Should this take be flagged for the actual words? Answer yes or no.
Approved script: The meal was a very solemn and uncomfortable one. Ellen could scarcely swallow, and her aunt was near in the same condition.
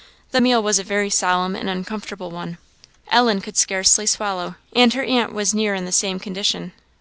no